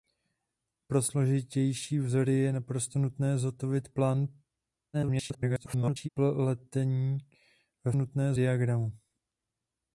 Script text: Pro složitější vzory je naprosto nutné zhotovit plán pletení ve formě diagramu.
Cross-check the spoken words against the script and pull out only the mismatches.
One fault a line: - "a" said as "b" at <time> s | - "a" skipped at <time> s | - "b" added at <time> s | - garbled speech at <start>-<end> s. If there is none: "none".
- garbled speech at 4.9-6.1 s
- "formě" said as "nutné" at 8.0 s